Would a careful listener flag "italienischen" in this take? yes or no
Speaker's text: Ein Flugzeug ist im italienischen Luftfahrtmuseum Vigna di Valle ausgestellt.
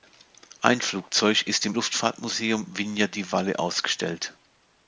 yes